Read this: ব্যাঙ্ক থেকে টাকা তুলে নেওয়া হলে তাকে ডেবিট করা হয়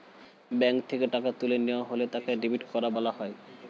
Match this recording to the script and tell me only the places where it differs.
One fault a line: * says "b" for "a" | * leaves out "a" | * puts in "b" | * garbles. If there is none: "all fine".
* puts in "বলা"